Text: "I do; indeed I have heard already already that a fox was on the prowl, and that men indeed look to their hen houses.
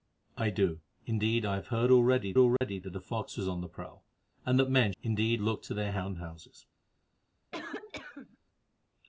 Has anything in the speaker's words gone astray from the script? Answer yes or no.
no